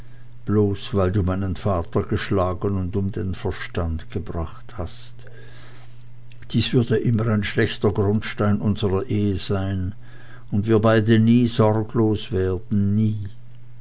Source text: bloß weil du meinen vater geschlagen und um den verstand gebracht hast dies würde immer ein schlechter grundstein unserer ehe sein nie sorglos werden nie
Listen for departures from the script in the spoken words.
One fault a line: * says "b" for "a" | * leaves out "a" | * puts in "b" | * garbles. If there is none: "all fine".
* puts in "und wir beide"